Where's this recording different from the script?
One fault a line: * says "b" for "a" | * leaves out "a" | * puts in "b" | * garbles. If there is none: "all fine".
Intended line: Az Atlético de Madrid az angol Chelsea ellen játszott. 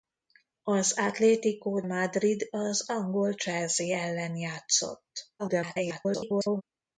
* leaves out "de"
* garbles